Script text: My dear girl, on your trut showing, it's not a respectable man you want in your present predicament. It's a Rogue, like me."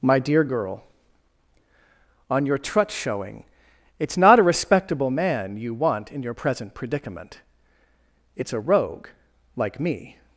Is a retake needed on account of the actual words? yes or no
no